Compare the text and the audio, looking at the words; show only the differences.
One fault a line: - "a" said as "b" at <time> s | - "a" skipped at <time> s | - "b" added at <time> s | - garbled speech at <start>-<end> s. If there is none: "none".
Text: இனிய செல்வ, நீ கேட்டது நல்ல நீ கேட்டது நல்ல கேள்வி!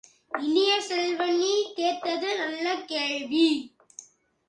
- "நீ கேட்டது நல்ல" skipped at 2.8 s